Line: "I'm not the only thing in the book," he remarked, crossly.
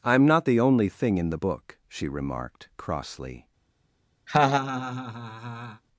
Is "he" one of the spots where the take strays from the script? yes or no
yes